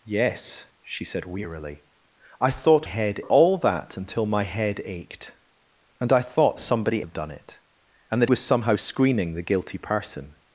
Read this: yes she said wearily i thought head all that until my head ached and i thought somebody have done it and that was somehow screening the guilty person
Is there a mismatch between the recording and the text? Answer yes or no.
no